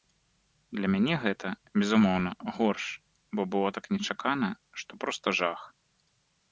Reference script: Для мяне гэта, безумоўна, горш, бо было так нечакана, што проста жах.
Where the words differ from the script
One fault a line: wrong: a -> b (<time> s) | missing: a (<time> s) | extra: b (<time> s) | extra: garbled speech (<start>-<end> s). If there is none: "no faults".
no faults